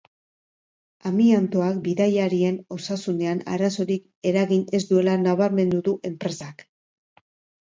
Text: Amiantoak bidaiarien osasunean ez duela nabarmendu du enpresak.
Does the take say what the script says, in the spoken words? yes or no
no